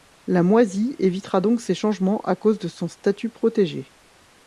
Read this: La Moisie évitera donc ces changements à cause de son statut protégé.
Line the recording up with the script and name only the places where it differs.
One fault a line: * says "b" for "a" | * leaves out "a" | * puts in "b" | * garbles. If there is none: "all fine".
all fine